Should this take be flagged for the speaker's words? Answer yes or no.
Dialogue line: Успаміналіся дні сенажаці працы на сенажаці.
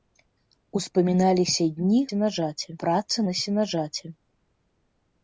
no